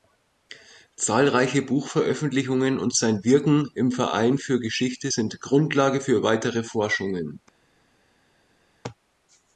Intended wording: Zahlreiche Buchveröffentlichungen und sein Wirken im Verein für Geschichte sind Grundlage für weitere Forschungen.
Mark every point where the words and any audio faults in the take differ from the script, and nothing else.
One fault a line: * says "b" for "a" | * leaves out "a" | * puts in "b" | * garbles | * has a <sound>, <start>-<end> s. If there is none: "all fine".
all fine